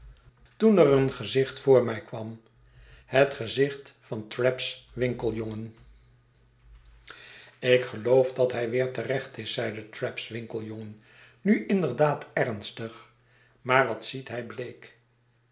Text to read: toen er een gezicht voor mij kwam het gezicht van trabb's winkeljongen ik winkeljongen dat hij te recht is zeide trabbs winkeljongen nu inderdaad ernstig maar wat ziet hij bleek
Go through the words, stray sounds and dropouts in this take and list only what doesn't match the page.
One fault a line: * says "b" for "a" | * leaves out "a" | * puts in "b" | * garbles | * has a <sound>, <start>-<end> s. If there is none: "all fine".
* says "geloof" for "winkeljongen"
* puts in "weer"